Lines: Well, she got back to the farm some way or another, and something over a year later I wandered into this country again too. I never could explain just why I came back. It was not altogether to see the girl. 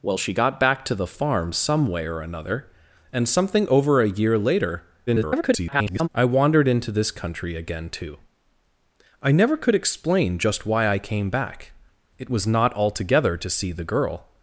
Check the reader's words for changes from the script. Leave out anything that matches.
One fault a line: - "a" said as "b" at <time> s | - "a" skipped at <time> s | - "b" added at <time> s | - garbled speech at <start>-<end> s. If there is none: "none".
- garbled speech at 5.1-6.1 s